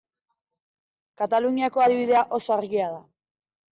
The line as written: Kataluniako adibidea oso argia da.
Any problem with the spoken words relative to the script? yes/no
no